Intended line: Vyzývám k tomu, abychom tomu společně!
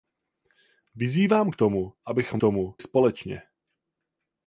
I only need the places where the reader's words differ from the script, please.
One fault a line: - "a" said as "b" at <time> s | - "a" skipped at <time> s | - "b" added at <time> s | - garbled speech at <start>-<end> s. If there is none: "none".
none